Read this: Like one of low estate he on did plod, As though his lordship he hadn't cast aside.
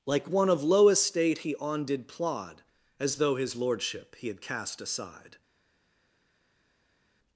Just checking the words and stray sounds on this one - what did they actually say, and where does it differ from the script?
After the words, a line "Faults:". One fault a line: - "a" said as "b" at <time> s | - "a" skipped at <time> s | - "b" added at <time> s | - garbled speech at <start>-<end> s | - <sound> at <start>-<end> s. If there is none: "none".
Like one of low estate he on did plod, As though his lordship he had cast aside.
Faults:
- "hadn't" said as "had" at 4.3 s